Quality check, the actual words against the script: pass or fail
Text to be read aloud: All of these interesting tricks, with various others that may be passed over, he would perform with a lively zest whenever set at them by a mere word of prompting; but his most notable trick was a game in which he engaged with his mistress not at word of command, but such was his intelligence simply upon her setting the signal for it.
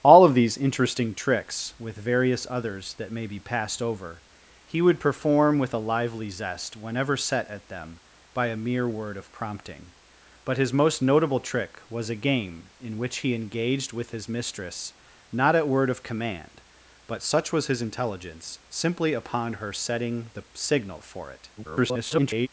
fail